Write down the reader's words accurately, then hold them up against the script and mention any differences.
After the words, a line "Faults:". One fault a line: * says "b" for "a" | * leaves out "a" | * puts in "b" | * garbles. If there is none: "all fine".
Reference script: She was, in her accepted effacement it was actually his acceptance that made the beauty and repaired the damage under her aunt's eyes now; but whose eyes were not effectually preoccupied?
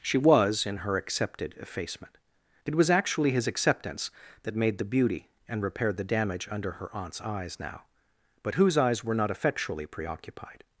She was, in her accepted effacement it was actually his acceptance that made the beauty and repaired the damage under her aunt's eyes now; but whose eyes were not effectually preoccupied?
Faults:
all fine